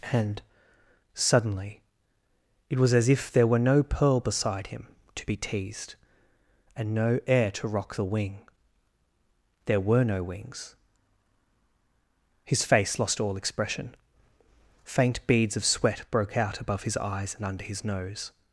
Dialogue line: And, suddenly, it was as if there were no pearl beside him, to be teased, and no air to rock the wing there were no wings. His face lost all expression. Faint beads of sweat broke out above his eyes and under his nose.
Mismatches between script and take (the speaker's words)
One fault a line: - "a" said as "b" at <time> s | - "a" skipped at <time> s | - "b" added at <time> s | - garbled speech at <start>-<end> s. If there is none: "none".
none